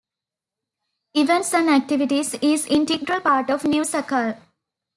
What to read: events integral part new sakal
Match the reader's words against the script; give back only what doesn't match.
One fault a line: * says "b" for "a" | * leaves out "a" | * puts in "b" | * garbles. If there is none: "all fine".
* puts in "and activities is"
* puts in "of"